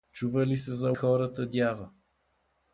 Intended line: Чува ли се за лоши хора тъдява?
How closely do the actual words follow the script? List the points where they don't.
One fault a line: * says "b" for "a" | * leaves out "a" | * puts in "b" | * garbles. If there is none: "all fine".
* leaves out "лоши"